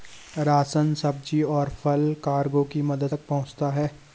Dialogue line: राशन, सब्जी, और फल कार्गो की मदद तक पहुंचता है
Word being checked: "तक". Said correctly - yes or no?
yes